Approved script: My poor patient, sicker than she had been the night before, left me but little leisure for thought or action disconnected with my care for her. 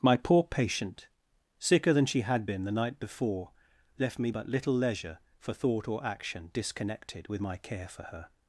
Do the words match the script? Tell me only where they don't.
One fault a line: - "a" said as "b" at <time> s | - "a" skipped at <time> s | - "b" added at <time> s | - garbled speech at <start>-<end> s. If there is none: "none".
none